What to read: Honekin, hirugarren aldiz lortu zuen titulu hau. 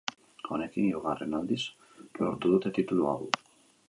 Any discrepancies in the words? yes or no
yes